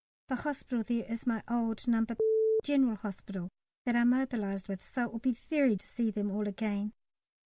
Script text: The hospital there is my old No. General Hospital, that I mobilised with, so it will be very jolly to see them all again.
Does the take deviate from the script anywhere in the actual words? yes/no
yes